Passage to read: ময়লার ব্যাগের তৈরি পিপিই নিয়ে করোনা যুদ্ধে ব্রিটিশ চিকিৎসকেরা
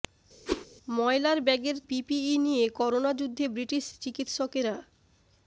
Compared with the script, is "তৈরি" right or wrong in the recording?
wrong